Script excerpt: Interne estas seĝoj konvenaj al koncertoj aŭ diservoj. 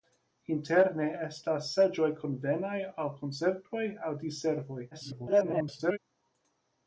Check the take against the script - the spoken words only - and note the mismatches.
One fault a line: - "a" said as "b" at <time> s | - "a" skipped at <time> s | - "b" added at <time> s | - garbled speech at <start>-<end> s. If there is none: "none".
- garbled speech at 4.9-6.0 s